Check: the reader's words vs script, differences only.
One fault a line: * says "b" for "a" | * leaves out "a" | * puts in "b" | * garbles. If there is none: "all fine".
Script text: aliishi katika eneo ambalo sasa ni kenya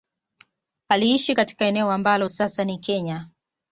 all fine